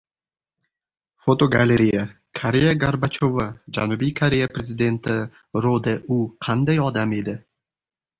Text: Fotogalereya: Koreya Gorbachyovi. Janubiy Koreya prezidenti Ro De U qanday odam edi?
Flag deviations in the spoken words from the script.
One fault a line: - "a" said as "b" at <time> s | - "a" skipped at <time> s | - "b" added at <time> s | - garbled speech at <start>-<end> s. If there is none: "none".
none